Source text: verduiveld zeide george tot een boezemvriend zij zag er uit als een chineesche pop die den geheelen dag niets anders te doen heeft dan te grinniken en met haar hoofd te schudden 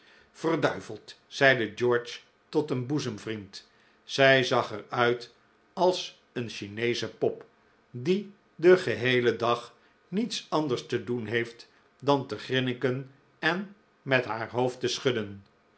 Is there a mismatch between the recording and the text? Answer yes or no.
no